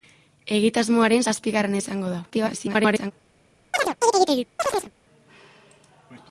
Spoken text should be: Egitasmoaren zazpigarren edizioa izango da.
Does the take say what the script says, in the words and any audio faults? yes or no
no